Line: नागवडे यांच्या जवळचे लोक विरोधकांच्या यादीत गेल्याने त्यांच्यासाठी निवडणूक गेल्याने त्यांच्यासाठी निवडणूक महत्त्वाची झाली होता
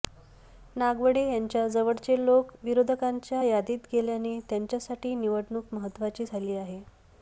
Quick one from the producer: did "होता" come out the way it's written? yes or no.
no